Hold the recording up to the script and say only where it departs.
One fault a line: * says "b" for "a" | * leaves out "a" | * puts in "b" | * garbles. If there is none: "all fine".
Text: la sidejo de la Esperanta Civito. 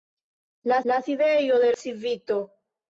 * puts in "la"
* leaves out "la Esperanta"